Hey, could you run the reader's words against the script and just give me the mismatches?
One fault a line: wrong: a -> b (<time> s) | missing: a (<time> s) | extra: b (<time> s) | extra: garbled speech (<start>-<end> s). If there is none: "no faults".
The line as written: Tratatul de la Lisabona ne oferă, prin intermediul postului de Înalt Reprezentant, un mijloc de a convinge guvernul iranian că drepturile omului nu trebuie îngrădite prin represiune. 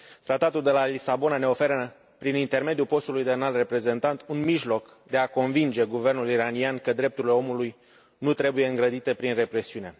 no faults